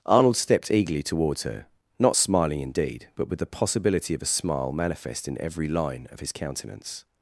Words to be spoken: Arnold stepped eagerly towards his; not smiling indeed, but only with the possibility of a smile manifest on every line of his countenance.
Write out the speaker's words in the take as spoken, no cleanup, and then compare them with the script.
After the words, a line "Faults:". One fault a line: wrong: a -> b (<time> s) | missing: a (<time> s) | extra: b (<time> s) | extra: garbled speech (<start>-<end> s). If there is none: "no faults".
Arnold stepped eagerly towards her; not smiling indeed, but with the possibility of a smile manifest in every line of his countenance.
Faults:
wrong: his -> her (1.4 s)
missing: only (3.3 s)
wrong: on -> in (5.3 s)